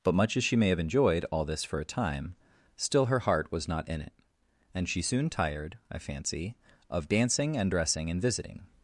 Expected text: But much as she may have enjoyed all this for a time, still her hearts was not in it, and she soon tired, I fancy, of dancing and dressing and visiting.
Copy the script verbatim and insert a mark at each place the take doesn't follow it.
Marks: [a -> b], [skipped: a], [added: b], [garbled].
But much as she may have enjoyed all this for a time, still her [hearts -> heart] was not in it, and she soon tired, I fancy, of dancing and dressing and visiting.